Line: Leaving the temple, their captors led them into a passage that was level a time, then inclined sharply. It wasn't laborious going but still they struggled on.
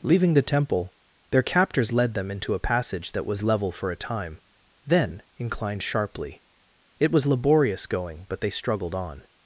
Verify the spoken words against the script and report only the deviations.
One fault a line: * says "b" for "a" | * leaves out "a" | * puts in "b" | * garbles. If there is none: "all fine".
* puts in "for"
* says "was" for "wasn't"
* leaves out "still"